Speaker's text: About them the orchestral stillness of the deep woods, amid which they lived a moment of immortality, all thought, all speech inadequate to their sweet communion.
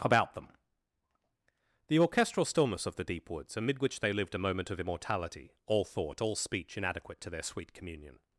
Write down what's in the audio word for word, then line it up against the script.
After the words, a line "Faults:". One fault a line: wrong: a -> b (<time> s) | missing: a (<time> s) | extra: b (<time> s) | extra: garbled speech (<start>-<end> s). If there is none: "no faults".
About them the orchestral stillness of the deep woods, amid which they lived a moment of immortality, all thought, all speech inadequate to their sweet communion.
Faults:
no faults